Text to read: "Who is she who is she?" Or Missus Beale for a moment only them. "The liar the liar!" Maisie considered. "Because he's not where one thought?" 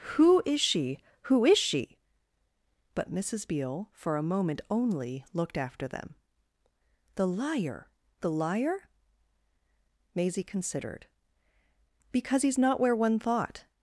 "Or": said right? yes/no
no